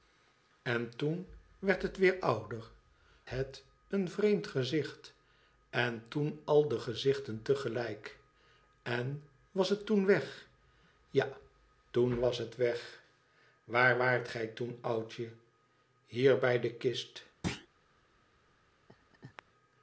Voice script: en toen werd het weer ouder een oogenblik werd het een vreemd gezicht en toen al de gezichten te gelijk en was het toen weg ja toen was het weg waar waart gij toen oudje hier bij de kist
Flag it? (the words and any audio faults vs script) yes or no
yes